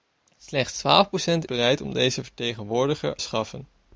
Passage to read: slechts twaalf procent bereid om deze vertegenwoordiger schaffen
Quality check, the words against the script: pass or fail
pass